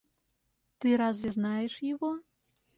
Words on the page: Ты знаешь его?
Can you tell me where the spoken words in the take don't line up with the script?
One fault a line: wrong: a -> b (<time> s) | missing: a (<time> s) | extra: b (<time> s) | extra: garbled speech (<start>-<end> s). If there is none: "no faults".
extra: разве (1.0 s)